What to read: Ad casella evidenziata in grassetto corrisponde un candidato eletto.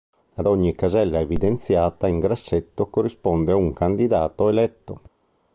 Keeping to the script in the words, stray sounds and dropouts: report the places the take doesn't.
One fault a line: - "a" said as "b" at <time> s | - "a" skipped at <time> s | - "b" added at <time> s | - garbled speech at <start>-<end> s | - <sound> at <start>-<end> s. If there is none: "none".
- "ogni" added at 0.5 s